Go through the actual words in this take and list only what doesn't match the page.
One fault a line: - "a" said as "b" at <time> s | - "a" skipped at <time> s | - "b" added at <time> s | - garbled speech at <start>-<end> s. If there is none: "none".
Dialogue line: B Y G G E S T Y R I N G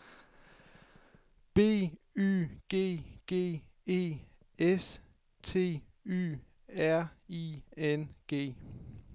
none